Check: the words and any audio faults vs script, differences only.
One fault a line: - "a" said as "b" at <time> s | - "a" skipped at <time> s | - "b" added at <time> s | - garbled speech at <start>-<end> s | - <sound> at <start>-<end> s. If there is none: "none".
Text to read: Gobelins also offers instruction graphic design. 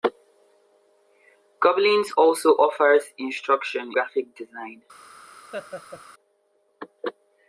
- laugh at 5.5-6.0 s